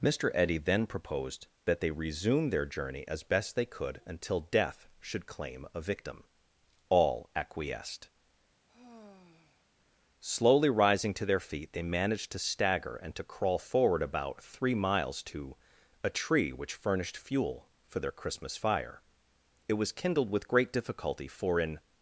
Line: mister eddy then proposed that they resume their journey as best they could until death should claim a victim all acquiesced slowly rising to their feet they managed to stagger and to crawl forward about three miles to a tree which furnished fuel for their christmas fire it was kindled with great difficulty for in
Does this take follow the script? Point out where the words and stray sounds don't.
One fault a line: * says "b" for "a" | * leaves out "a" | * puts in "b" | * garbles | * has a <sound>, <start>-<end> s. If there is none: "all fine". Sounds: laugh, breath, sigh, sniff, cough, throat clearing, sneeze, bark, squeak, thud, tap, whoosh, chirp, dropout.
* has a sigh, 8.7-9.7 s